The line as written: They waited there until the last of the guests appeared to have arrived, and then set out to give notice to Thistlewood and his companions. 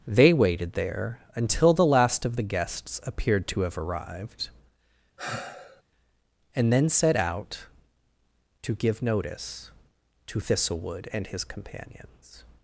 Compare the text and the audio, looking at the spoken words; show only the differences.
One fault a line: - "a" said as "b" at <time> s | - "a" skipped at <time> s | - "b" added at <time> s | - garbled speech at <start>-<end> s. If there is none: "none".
none